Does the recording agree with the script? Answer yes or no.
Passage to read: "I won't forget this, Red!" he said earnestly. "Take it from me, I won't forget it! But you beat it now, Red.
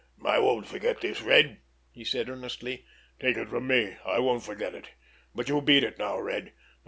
yes